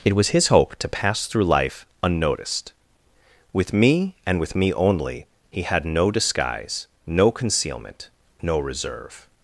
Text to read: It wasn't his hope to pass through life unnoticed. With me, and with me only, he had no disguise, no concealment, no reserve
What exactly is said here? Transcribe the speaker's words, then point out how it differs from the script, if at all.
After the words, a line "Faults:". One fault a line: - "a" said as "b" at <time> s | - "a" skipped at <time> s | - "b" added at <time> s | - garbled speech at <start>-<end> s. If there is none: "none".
It was his hope to pass through life unnoticed. With me, and with me only, he had no disguise, no concealment, no reserve
Faults:
- "wasn't" said as "was" at 0.1 s